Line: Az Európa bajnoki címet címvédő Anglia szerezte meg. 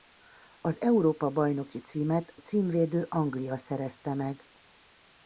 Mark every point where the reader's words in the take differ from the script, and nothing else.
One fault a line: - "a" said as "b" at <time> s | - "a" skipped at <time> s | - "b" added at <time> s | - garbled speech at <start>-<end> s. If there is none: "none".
none